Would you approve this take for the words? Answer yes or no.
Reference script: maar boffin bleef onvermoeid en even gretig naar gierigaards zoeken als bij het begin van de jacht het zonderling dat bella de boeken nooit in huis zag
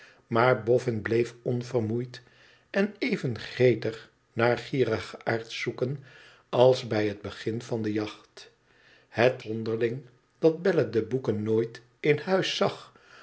yes